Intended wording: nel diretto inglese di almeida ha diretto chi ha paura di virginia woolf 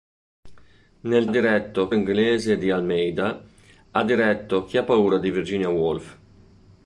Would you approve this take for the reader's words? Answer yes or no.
yes